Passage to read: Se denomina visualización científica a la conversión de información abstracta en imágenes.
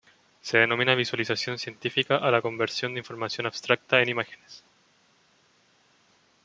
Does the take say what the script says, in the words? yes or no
yes